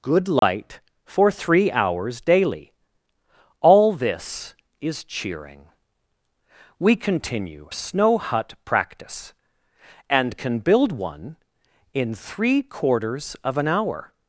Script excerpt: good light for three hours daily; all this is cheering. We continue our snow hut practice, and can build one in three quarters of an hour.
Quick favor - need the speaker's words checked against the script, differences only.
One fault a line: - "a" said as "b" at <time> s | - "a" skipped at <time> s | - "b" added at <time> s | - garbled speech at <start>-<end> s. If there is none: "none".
- "our" skipped at 7.7 s